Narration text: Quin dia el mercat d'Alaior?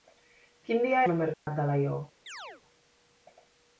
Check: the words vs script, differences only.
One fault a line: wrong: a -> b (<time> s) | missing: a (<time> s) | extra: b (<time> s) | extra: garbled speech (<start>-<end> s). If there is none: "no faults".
no faults